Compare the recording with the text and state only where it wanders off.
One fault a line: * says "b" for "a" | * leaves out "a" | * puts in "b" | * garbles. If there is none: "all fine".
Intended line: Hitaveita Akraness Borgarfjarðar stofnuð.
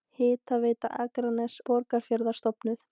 all fine